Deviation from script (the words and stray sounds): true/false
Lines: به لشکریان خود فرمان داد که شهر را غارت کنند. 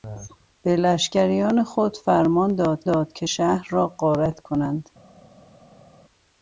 true